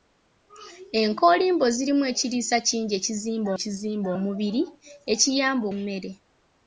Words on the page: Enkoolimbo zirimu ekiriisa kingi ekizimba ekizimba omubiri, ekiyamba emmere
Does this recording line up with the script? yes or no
yes